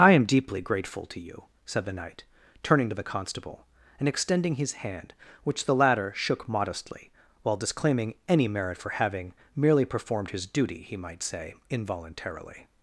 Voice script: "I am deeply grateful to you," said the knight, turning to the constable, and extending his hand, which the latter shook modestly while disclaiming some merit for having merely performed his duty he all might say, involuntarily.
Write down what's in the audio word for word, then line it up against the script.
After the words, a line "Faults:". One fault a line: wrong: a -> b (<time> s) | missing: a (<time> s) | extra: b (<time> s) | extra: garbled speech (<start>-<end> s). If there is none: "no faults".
"I am deeply grateful to you," said the knight, turning to the constable, and extending his hand, which the latter shook modestly while disclaiming any merit for having merely performed his duty he might say, involuntarily.
Faults:
wrong: some -> any (8.3 s)
missing: all (10.9 s)